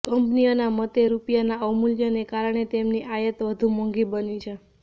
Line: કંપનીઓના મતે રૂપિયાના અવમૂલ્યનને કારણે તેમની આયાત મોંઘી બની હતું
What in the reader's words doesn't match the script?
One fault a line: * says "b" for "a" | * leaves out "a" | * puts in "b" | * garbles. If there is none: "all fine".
* puts in "વધુ"
* says "છે" for "હતું"